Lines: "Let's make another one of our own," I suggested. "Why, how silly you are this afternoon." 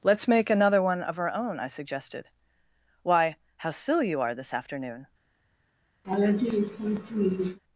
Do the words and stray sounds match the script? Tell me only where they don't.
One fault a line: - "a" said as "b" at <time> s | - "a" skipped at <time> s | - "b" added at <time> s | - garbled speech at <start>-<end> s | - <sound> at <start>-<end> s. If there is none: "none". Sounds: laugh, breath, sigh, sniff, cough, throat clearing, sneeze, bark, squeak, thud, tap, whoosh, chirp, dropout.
- laugh at 6.0-7.6 s